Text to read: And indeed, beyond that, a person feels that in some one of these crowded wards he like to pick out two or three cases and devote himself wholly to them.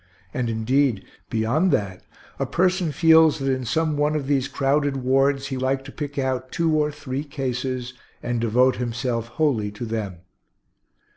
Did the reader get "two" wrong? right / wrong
right